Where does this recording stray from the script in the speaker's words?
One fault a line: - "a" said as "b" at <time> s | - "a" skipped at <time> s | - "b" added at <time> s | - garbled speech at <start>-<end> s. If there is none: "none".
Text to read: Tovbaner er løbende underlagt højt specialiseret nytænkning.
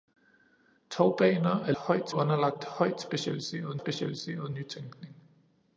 - "løbende" said as "højt" at 1.7 s
- "specialiseret" added at 3.8 s